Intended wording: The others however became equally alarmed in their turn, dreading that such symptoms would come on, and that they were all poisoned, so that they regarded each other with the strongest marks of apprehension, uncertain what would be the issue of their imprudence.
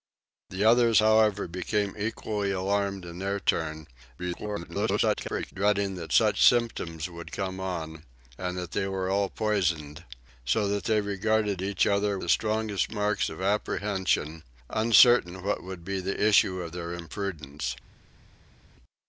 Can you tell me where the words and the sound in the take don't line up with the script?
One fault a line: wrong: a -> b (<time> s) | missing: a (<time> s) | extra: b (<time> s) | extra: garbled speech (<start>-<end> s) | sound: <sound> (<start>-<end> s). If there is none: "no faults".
extra: garbled speech (4.2-5.5 s)
missing: with (12.2 s)